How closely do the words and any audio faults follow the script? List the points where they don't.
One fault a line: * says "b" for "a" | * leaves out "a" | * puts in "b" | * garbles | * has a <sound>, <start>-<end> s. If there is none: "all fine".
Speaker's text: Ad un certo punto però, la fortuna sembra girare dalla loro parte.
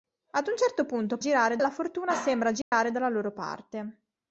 * says "girare" for "però"
* has a dropout, 2.6-2.7 s